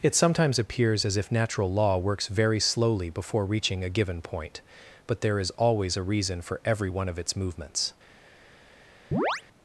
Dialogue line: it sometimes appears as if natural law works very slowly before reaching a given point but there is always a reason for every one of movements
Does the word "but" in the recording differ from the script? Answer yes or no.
no